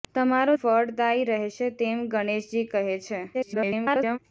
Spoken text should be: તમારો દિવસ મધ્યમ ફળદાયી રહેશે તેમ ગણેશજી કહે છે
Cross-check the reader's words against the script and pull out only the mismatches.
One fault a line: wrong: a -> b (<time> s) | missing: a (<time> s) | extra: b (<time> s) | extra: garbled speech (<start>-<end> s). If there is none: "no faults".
missing: દિવસ મધ્યમ (0.5 s)
extra: garbled speech (3.3-4.2 s)